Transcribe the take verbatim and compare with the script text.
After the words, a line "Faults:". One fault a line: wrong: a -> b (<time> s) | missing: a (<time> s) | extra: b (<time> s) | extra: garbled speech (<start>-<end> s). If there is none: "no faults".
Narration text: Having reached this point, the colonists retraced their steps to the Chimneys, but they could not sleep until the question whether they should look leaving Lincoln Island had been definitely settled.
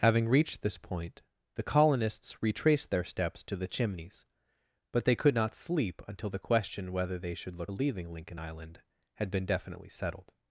Having reached this point, the colonists retraced their steps to the Chimneys, but they could not sleep until the question whether they should look leaving Lincoln Island had been definitely settled.
Faults:
no faults